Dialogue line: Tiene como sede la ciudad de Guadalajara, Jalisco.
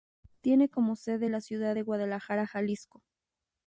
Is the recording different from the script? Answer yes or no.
no